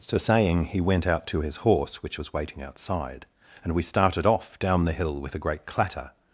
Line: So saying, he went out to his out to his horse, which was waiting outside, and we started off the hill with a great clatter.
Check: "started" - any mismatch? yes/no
no